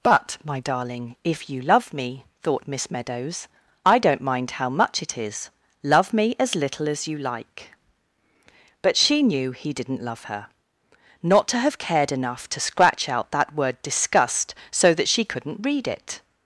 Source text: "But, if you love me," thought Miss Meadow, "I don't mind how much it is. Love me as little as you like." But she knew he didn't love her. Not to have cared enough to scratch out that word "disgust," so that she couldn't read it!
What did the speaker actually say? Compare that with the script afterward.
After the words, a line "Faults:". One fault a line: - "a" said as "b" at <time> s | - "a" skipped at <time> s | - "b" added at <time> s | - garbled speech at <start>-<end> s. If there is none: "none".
"But, my darling, if you love me," thought Miss Meadows, "I don't mind how much it is. Love me as little as you like." But she knew he didn't love her. Not to have cared enough to scratch out that word "disgust," so that she couldn't read it!
Faults:
- "my darling" added at 0.4 s
- "Meadow" said as "Meadows" at 2.9 s